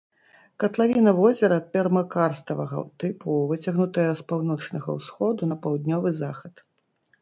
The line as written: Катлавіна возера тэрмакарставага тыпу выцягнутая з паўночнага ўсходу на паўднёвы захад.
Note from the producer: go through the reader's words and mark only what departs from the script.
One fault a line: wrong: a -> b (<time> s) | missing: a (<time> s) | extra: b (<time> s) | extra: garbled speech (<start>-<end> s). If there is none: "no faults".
no faults